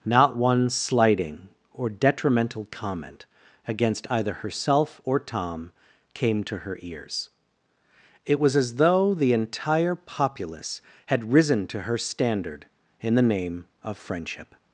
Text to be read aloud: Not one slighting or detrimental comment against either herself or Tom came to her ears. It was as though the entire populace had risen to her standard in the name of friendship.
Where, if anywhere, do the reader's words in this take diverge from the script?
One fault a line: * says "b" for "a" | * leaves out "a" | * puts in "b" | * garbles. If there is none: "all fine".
all fine